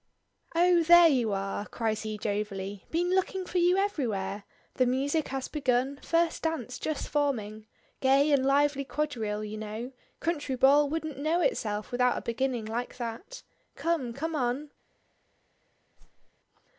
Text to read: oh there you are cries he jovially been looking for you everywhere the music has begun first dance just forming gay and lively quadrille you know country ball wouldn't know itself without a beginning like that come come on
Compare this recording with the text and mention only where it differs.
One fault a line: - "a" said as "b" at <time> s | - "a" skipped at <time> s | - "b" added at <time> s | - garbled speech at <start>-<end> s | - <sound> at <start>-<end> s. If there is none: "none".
- whoosh at 16.0-16.3 s